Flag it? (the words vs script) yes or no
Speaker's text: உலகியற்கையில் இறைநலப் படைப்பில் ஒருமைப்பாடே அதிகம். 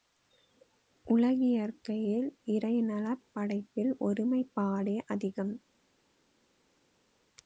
no